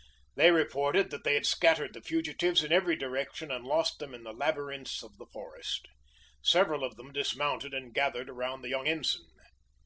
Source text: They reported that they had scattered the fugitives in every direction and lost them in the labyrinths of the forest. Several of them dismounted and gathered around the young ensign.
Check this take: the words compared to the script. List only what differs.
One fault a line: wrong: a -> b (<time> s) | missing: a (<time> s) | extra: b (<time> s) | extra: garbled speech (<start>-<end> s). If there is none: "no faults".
no faults